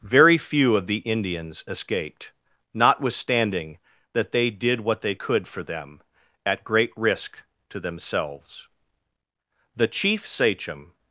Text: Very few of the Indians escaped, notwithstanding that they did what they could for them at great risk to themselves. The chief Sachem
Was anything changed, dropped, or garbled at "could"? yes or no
no